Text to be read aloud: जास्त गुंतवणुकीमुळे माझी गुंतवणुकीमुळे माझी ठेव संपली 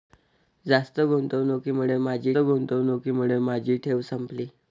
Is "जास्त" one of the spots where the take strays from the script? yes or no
no